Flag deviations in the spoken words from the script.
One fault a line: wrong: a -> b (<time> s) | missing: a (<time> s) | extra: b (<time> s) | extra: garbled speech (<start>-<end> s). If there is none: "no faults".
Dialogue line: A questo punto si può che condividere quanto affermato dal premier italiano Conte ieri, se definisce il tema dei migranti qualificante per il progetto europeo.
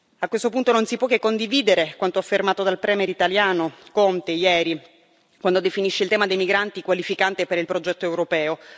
extra: non (0.7 s)
wrong: se -> quando (5.4 s)